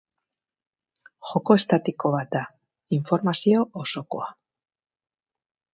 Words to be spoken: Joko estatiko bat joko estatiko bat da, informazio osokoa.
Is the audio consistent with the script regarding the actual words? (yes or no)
no